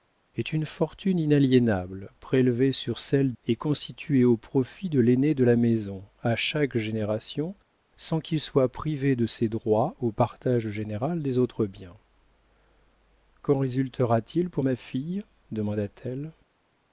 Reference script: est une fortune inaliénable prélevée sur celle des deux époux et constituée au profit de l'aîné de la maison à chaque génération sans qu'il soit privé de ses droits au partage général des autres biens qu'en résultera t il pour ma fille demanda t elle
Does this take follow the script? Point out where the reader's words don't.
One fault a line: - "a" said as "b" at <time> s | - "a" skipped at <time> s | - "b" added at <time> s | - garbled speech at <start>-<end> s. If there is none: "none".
- "des deux époux" skipped at 3.3 s